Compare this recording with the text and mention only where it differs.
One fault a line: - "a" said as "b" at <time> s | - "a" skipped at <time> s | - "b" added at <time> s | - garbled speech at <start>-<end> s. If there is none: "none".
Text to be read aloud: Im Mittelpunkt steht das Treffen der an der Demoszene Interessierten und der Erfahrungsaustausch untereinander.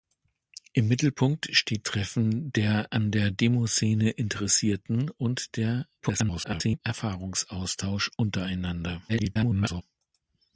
- "das" skipped at 1.9 s
- garbled speech at 6.0-6.8 s
- garbled speech at 9.1-9.8 s